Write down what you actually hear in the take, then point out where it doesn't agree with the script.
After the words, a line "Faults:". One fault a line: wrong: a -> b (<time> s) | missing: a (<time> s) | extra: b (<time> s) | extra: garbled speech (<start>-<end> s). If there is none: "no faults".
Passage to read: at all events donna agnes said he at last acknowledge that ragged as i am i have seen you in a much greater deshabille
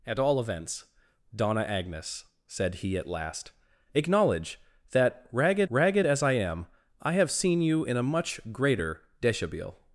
at all events donna agnes said he at last acknowledge that ragged ragged as i am i have seen you in a much greater deshabille
Faults:
extra: ragged (5.7 s)